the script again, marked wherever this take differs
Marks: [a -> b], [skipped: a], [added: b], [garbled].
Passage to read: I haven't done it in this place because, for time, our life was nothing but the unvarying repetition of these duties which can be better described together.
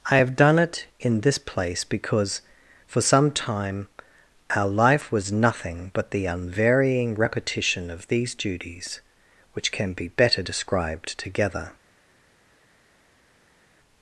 I [haven't -> have] done it in this place because, for [added: some] time, our life was nothing but the unvarying repetition of these duties which can be better described together.